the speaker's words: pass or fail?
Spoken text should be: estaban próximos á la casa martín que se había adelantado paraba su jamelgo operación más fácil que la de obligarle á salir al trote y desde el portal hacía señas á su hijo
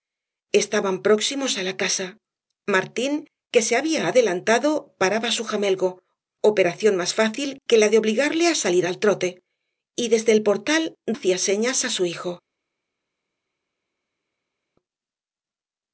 pass